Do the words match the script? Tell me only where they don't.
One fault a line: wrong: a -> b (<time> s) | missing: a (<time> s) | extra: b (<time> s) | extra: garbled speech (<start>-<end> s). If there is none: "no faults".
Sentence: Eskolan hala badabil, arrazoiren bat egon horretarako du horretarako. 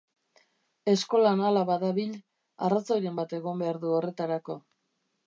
wrong: horretarako -> behar (3.7 s)